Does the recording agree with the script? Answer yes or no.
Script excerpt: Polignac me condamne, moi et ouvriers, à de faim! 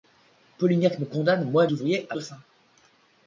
yes